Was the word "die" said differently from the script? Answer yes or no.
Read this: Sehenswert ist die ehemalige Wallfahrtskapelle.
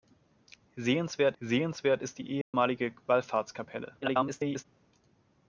no